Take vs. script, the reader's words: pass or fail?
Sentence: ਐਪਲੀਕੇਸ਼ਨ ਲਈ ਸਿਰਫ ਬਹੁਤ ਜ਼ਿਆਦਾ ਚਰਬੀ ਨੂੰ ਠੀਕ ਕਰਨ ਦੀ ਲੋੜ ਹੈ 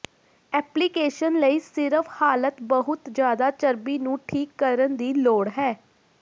fail